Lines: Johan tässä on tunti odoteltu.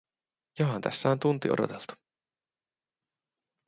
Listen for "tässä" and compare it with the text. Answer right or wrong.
right